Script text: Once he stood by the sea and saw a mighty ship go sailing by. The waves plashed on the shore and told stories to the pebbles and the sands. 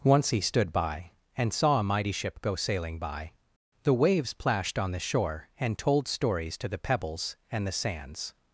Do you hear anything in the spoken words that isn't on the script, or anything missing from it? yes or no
yes